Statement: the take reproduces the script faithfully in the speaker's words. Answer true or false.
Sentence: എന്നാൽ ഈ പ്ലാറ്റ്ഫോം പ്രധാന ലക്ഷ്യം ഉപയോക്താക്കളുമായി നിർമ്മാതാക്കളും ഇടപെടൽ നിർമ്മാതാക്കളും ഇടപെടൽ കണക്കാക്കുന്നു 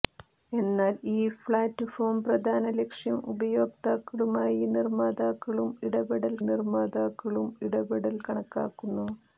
true